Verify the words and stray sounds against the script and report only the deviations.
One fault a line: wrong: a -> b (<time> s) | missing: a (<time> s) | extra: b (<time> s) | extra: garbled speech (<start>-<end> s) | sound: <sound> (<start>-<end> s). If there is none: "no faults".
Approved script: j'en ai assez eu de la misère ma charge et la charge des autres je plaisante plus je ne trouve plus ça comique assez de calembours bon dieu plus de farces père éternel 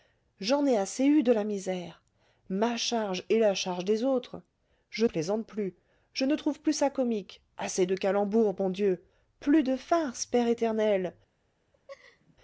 sound: laugh (11.7-12.4 s)